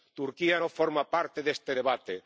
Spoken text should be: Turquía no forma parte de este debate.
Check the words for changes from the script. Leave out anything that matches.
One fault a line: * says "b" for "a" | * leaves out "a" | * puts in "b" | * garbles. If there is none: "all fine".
all fine